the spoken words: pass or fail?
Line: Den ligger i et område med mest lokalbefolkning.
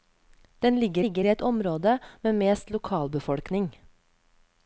fail